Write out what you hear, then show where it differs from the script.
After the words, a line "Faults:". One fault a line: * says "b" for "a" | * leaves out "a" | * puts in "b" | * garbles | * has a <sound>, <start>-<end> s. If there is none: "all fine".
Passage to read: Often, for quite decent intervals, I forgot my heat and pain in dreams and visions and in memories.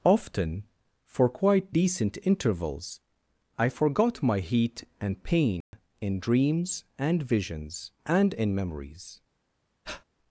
Often, for quite decent intervals, I forgot my heat and pain in dreams and visions and in memories.
Faults:
* has a dropout, 5.6-5.7 s
* has a breath, 9.8-10.0 s